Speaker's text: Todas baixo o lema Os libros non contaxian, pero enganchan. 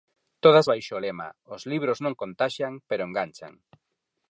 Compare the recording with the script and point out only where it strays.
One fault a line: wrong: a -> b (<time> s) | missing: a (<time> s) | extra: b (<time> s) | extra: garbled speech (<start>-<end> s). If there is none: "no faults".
no faults